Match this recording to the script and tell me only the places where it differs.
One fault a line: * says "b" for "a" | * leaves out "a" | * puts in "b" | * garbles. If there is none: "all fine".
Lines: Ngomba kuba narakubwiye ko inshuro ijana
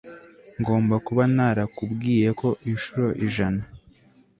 all fine